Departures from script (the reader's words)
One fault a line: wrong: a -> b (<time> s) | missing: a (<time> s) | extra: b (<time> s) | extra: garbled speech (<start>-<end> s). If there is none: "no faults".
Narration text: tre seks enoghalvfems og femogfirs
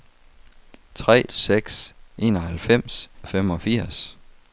no faults